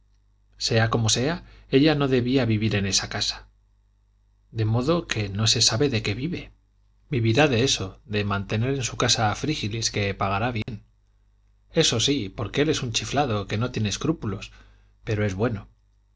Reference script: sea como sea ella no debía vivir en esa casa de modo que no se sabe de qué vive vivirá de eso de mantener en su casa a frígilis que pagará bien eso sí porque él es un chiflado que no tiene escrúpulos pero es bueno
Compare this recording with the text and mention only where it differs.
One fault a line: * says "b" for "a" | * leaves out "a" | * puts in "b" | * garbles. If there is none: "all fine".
all fine